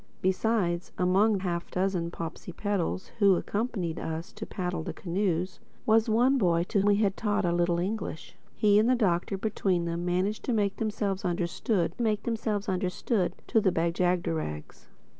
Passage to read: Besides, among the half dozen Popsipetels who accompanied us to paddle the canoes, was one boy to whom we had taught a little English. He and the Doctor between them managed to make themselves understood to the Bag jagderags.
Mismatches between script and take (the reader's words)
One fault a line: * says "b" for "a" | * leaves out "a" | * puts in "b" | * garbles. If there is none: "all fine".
* leaves out "the"
* leaves out "whom"
* puts in "make themselves understood"